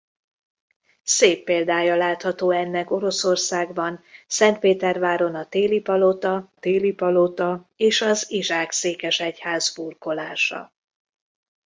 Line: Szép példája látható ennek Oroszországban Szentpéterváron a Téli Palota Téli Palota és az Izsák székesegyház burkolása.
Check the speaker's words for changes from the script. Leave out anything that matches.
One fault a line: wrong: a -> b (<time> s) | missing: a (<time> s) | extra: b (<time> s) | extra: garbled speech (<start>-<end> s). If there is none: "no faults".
no faults